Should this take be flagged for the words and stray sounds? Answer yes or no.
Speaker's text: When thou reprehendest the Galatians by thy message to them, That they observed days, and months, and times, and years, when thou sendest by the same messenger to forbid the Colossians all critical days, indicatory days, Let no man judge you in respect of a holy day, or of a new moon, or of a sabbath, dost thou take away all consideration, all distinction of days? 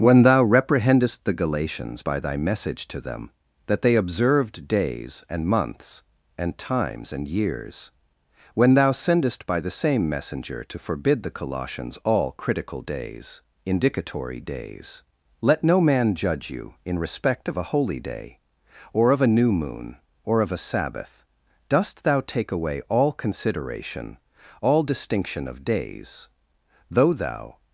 yes